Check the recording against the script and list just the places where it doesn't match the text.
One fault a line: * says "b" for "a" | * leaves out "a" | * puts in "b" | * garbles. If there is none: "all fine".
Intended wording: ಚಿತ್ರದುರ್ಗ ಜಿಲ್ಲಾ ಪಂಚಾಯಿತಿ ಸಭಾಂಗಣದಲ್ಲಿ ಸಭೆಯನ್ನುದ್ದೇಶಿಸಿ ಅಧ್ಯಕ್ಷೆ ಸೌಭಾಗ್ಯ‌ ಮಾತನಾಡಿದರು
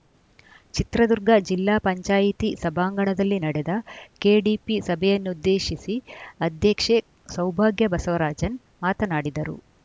* puts in "ನಡೆದ ಕೆಡಿಪಿ"
* puts in "ಬಸವರಾಜನ್"